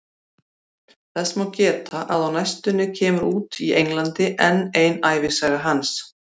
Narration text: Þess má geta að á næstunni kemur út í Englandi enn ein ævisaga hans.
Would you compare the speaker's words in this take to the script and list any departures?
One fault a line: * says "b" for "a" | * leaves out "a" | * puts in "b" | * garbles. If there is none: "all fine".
all fine